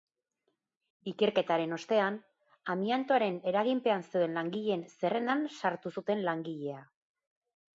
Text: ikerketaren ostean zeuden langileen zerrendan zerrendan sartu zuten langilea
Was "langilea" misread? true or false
false